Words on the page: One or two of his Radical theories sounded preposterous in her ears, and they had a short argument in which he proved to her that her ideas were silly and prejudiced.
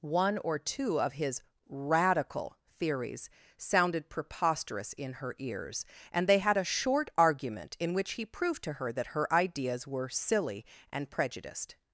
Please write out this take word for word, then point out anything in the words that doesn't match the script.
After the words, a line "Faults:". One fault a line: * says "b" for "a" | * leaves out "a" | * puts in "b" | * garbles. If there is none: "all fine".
One or two of his Radical theories sounded preposterous in her ears, and they had a short argument in which he proved to her that her ideas were silly and prejudiced.
Faults:
all fine